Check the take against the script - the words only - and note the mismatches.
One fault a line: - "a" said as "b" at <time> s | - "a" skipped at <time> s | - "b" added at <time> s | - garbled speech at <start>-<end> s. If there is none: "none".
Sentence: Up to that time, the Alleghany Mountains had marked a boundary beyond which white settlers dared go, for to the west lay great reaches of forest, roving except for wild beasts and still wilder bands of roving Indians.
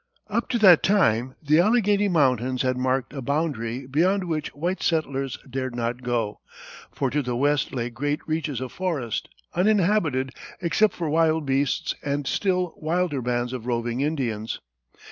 - "not" added at 5.8 s
- "roving" said as "uninhabited" at 9.5 s